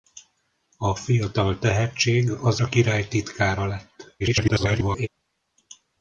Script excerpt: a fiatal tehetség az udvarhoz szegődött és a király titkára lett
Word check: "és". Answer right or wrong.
wrong